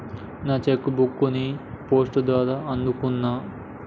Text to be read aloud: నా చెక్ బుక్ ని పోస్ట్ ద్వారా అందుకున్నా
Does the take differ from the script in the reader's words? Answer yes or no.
no